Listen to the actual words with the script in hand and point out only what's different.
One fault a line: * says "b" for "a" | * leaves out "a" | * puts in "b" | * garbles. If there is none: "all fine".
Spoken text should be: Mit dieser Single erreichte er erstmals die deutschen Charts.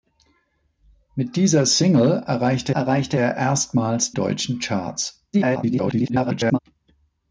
* puts in "erreichte"
* leaves out "die"
* garbles